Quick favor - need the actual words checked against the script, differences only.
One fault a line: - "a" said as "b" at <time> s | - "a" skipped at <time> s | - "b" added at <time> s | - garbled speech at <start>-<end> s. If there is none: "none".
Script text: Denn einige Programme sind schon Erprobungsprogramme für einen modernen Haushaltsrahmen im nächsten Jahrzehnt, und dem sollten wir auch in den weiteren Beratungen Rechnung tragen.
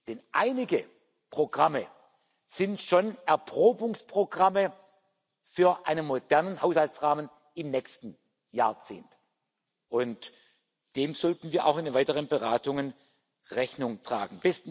none